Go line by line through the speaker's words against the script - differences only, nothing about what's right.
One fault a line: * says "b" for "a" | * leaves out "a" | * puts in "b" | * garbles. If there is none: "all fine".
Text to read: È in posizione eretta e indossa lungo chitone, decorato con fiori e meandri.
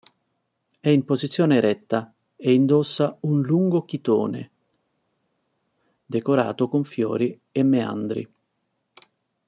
* puts in "un"